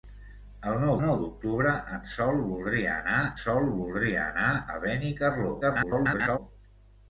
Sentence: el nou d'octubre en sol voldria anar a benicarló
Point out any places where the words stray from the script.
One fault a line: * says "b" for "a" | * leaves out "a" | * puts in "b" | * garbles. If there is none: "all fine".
* puts in "nou"
* puts in "sol voldria anar"
* garbles